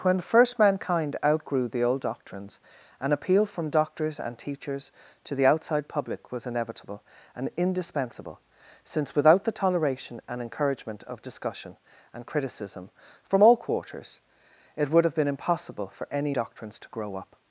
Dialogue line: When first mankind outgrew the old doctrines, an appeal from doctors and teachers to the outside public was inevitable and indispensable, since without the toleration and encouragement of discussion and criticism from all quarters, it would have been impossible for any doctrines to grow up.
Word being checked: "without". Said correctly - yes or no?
yes